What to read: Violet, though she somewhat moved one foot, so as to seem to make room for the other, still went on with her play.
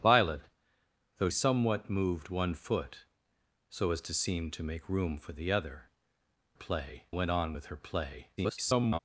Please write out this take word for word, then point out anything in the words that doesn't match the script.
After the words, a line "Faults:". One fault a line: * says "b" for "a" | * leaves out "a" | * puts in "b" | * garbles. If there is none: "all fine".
Violet, though somewhat moved one foot, so as to seem to make room for the other, play went on with her play. [garbled]
Faults:
* leaves out "she"
* says "play" for "still"
* garbles